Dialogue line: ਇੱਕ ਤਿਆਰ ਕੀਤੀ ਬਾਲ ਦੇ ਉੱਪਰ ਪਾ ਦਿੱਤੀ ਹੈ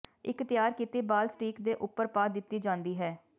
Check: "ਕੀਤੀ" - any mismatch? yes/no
no